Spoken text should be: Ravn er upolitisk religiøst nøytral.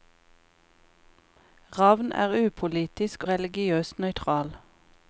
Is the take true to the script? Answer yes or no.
yes